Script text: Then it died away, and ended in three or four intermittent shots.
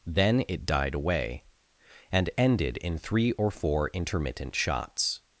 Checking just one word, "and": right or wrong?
right